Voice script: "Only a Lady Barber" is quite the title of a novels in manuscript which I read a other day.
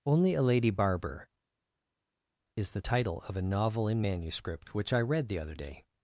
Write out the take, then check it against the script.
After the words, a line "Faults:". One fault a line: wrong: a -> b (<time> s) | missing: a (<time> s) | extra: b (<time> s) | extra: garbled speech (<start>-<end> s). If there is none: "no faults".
"Only a Lady Barber" is the title of a novel in manuscript which I read the other day.
Faults:
missing: quite (2.7 s)
wrong: novels -> novel (3.4 s)
wrong: a -> the (5.3 s)